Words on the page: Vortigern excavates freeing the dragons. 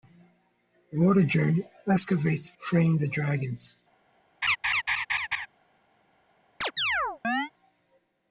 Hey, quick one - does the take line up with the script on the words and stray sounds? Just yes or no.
no